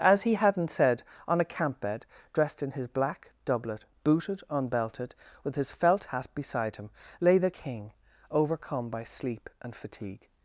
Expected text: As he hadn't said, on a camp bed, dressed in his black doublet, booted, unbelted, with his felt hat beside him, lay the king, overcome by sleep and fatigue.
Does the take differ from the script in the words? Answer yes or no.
no